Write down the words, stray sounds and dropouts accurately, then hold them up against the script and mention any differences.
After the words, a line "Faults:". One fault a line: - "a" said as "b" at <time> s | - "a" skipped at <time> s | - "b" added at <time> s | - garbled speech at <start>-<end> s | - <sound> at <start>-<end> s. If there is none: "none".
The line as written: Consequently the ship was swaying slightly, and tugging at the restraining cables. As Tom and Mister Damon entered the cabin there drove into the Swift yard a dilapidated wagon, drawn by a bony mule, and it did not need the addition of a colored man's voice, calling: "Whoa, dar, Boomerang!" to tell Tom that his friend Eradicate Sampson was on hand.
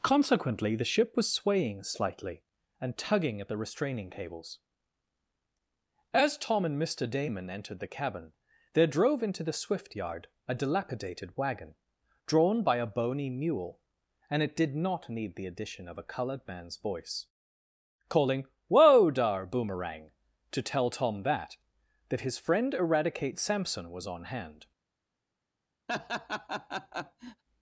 Consequently the ship was swaying slightly, and tugging at the restraining cables. As Tom and Mister Damon entered the cabin there drove into the Swift yard a dilapidated wagon, drawn by a bony mule, and it did not need the addition of a colored man's voice, calling: "Whoa, dar, Boomerang!" to tell Tom that that his friend Eradicate Sampson was on hand.
Faults:
- "that" added at 22.1 s
- laugh at 25.9-27.4 s